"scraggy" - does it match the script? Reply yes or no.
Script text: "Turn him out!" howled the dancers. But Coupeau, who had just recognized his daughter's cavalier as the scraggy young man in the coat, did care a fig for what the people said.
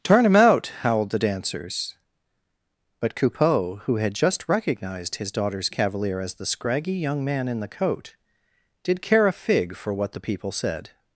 yes